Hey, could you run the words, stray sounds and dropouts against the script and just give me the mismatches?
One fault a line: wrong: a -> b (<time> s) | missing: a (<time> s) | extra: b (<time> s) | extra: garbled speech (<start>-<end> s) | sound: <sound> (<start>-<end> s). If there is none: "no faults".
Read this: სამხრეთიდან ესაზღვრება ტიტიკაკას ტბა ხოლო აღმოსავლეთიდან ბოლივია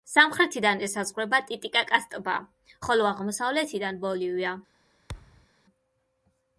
sound: thud (5.1-5.5 s)